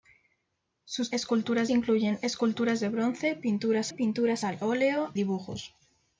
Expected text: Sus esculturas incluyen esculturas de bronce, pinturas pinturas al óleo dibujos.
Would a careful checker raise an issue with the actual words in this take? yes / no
no